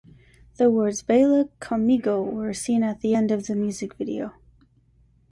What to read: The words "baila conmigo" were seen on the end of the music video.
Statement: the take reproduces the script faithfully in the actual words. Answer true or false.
false